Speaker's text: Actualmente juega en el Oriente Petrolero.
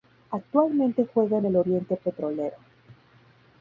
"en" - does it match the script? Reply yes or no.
yes